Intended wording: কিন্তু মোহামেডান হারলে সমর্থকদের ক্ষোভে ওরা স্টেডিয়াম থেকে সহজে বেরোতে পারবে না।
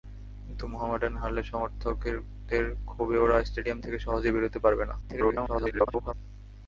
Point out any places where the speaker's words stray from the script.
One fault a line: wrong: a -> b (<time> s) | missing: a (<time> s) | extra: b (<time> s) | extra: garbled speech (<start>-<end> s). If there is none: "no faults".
extra: garbled speech (5.0-6.1 s)